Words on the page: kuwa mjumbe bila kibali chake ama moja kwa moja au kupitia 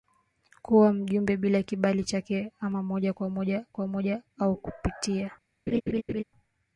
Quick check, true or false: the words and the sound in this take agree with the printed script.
false